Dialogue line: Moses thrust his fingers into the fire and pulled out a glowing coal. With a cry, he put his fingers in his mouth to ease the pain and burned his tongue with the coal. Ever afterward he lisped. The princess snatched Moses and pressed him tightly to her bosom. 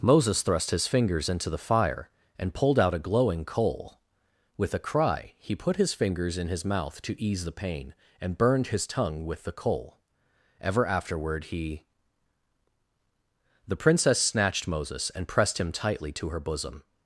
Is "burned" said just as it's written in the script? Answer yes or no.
yes